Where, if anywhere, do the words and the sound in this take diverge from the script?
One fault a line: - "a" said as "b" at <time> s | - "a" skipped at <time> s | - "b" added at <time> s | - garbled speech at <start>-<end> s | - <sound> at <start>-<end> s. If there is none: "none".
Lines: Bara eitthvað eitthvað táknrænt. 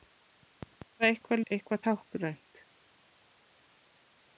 none